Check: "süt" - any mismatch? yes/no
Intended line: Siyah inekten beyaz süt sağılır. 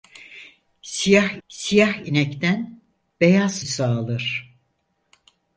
yes